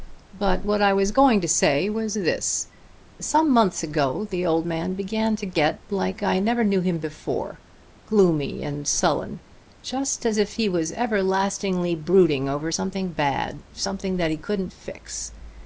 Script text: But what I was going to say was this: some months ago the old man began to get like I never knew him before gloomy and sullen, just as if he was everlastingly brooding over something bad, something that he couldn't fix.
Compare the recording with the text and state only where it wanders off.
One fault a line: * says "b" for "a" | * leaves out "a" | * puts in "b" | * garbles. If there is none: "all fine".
all fine